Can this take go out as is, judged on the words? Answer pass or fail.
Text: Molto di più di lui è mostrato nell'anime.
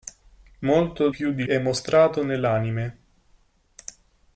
fail